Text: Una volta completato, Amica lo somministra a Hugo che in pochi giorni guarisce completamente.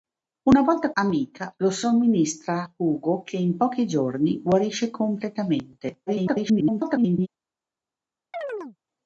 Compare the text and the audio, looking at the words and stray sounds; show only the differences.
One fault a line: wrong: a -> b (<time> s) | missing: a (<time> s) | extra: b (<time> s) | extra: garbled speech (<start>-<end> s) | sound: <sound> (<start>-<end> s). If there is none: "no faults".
missing: completato (0.9 s)
extra: garbled speech (6.1-7.3 s)
sound: chirp (8.3-8.8 s)